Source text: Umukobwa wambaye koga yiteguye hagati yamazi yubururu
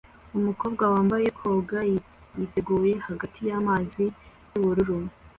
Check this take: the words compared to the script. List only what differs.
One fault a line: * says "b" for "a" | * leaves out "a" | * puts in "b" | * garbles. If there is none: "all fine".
all fine